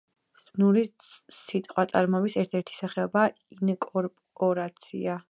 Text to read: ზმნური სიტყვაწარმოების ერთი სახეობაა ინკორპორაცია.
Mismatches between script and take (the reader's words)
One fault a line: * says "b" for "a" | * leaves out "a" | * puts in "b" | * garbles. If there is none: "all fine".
* puts in "ერთ"